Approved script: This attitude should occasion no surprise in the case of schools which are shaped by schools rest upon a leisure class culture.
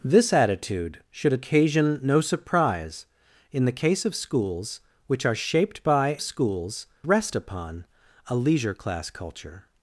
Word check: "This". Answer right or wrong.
right